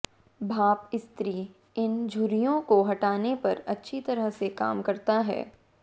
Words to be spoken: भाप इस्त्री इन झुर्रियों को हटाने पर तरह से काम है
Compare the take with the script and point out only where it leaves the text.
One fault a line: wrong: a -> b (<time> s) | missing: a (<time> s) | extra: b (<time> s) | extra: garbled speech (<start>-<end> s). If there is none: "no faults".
extra: अच्छी (3.7 s)
extra: करता (4.8 s)